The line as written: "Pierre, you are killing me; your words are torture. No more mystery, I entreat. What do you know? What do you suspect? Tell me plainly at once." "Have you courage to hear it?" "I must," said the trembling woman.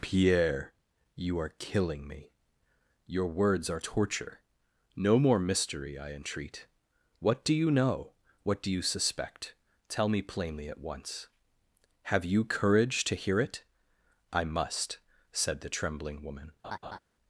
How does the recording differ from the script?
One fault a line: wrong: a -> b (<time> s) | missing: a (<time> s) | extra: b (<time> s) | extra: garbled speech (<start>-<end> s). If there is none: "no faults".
no faults